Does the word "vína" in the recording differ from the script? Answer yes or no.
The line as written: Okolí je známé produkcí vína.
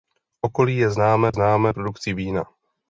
no